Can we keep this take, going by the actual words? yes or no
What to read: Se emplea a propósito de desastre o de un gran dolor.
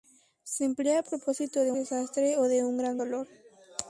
yes